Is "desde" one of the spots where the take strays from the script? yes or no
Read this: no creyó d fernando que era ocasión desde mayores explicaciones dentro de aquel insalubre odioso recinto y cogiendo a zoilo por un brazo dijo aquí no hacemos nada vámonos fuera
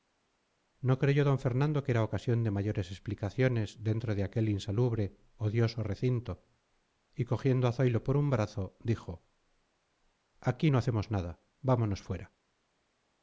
yes